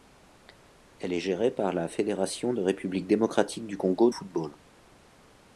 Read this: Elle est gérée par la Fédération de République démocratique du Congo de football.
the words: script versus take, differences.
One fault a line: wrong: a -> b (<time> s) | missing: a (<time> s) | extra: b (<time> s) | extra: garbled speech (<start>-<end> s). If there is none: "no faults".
missing: de (4.1 s)